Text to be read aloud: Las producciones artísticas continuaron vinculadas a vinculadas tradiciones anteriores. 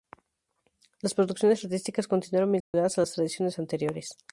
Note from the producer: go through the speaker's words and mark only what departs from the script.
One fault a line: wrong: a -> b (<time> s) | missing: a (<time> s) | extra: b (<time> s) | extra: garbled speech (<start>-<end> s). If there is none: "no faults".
wrong: vinculadas -> las (3.0 s)